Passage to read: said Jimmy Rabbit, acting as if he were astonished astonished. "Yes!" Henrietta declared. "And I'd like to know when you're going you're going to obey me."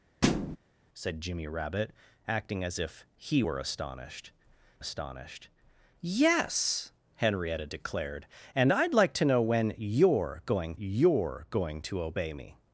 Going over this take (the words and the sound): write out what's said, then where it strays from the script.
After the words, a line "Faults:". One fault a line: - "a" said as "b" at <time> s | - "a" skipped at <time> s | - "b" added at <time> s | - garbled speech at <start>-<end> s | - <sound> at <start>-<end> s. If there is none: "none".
said Jimmy Rabbit, acting as if he were astonished astonished. "Yes!" Henrietta declared. "And I'd like to know when you're going you're going to obey me."
Faults:
- thud at 0.2-0.6 s